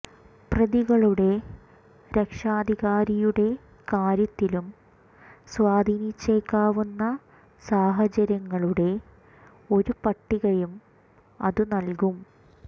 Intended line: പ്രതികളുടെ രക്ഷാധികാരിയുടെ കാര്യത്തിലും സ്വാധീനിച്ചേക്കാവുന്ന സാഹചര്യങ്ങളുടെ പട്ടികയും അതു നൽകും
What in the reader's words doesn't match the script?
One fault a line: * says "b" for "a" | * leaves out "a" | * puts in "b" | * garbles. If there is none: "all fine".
* puts in "ഒരു"